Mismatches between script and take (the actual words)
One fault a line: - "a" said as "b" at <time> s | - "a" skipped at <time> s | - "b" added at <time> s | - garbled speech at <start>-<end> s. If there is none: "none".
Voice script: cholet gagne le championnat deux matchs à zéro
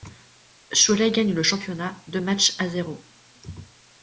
none